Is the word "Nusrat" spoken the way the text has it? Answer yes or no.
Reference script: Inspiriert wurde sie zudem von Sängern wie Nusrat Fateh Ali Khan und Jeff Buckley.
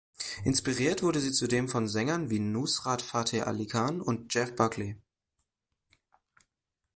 yes